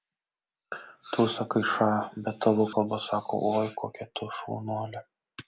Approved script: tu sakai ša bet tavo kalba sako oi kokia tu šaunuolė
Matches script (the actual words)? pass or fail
pass